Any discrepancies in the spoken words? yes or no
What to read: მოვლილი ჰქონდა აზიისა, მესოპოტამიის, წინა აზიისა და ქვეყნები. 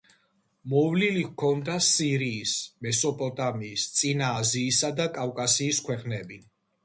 yes